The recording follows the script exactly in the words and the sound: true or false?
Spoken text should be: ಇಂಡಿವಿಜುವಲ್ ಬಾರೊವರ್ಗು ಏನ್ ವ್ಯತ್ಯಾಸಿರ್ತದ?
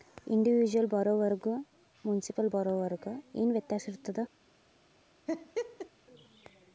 false